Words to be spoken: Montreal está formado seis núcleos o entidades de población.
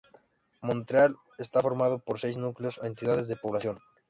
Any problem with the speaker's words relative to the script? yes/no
yes